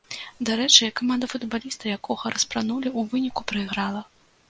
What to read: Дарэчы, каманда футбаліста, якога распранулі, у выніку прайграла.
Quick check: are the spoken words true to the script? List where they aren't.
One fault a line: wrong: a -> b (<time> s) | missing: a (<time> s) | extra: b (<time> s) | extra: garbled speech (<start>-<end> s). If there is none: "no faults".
no faults